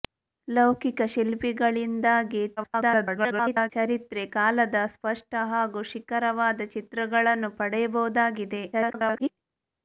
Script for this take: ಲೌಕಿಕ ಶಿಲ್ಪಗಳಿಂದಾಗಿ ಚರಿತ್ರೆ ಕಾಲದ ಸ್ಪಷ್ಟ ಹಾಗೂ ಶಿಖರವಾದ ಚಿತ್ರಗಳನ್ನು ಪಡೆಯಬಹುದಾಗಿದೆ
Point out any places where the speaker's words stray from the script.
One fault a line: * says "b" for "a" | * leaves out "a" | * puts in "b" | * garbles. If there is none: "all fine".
* garbles
* garbles